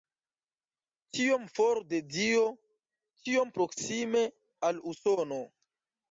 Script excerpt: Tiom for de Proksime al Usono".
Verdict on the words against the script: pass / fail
fail